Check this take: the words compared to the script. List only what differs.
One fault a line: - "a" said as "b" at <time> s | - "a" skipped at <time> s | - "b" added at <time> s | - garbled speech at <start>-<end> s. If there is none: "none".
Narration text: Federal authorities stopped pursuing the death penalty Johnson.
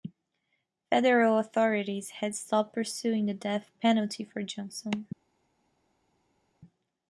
- "had" added at 2.1 s
- "for" added at 4.2 s